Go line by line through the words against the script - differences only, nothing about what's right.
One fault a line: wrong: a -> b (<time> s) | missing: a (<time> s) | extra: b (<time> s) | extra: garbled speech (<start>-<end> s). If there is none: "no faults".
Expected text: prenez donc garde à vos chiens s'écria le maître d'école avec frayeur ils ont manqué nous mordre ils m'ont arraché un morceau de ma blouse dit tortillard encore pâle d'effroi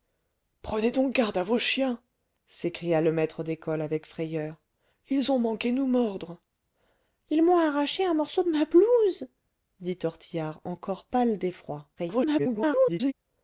extra: garbled speech (12.0-13.1 s)